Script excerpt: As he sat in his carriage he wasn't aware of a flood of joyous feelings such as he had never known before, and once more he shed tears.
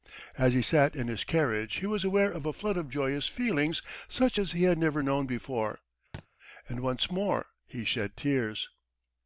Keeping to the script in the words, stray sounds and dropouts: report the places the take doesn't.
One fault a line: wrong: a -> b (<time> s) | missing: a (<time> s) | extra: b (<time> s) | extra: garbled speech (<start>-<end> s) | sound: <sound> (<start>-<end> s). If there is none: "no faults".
wrong: wasn't -> was (1.9 s)
sound: thud (6.1-6.3 s)